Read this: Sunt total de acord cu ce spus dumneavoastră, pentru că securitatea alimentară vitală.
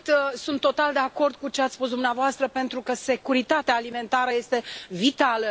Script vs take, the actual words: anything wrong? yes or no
yes